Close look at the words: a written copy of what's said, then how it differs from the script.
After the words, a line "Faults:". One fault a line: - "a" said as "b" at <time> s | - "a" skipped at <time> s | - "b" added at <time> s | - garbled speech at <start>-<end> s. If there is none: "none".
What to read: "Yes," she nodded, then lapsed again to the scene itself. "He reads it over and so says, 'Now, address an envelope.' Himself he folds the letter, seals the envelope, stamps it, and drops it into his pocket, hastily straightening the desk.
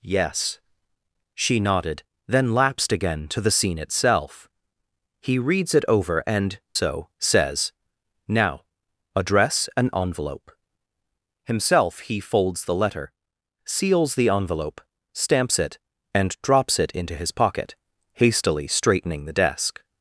"Yes," she nodded, then lapsed again to the scene itself. "He reads it over and so says, 'Now, address an envelope.' Himself he folds the letter, seals the envelope, stamps it, and drops it into his pocket, hastily straightening the desk.
Faults:
none